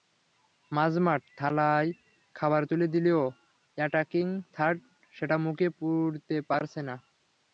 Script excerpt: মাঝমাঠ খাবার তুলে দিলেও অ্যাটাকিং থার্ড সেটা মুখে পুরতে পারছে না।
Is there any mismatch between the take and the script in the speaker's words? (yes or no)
yes